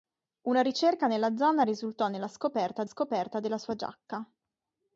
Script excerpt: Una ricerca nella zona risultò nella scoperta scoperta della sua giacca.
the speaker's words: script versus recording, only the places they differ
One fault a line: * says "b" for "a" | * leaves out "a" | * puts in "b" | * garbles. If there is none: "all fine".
all fine